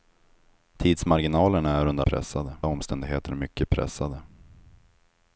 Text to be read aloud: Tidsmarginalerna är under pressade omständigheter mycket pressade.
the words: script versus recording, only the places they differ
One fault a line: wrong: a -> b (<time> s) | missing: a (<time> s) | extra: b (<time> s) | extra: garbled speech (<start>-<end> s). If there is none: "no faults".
no faults